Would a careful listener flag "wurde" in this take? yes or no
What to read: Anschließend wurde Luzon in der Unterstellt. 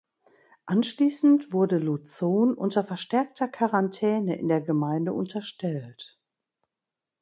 no